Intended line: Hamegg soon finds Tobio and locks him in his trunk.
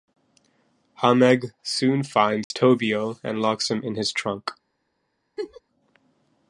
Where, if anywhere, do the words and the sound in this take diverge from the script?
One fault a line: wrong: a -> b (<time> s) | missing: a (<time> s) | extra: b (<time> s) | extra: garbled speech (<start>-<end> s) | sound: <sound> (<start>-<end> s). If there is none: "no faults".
sound: dropout (2.4-2.5 s)
sound: laugh (5.4-5.6 s)